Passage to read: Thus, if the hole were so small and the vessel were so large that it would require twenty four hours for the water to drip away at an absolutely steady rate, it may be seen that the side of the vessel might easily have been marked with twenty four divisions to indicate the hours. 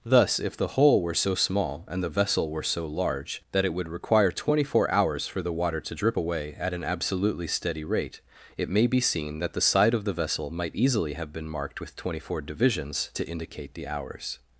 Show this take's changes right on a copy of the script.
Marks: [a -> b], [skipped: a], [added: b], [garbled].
Thus, if the hole were so small and the vessel were so large that it would require twenty four hours for the water to drip away at an absolutely steady rate, it may be seen that the side of the vessel might easily have been marked with twenty four divisions to indicate the hours.